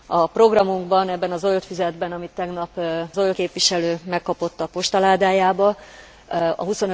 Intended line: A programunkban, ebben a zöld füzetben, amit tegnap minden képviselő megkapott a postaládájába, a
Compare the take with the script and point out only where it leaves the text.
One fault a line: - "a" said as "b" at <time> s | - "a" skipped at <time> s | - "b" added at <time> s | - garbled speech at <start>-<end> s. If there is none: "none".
- "minden" said as "zöld" at 3.1 s